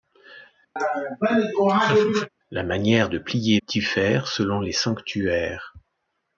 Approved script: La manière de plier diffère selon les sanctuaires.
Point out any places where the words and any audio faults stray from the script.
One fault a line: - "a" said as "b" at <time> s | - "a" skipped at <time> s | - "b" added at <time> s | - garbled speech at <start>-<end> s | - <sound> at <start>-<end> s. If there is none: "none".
- laugh at 0.8-2.3 s